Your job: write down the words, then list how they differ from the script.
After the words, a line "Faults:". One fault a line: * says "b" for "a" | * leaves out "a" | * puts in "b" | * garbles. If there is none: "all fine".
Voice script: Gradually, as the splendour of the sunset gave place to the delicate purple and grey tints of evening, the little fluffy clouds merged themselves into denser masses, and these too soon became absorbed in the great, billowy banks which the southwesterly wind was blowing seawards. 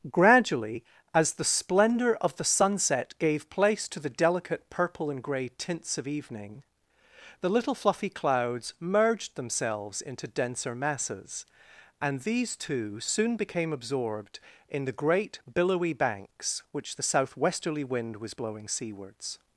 Gradually, as the splendour of the sunset gave place to the delicate purple and grey tints of evening, the little fluffy clouds merged themselves into denser masses, and these too soon became absorbed in the great, billowy banks which the southwesterly wind was blowing seawards.
Faults:
all fine